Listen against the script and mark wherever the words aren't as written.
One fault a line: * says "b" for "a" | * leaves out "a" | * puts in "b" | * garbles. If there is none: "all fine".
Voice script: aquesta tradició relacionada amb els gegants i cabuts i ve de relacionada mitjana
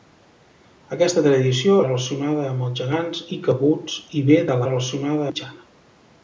all fine